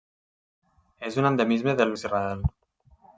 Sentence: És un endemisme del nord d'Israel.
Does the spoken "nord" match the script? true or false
false